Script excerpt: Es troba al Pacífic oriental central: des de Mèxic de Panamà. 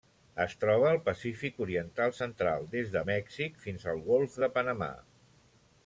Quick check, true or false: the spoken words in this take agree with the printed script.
false